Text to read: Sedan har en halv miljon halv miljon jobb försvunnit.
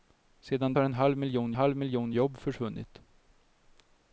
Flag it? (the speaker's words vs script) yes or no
no